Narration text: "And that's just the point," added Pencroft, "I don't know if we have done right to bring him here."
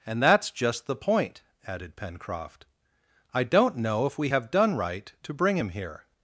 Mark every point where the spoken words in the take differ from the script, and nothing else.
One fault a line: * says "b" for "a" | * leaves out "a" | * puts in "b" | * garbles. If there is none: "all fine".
all fine